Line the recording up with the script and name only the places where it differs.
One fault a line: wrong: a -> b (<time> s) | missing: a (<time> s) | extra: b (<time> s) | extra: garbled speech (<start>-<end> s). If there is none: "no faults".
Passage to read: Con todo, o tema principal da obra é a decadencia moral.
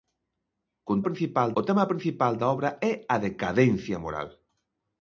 wrong: todo -> principal (1.1 s)